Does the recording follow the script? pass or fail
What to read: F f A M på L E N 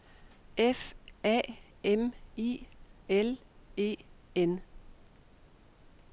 fail